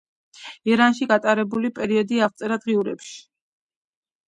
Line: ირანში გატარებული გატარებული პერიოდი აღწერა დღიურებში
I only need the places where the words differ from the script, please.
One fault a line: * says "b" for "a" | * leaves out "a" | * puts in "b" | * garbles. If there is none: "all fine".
* leaves out "გატარებული"